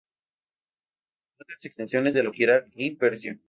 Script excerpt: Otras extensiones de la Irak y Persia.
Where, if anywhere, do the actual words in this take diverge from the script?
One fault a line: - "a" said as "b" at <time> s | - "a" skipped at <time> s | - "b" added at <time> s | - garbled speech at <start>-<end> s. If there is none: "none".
none